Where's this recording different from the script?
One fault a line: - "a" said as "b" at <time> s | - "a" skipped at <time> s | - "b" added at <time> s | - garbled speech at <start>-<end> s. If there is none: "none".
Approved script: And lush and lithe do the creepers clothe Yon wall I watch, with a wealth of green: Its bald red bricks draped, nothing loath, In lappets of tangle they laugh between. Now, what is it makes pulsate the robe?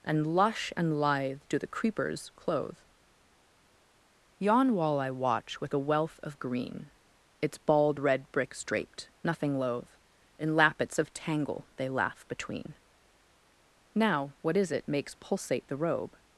none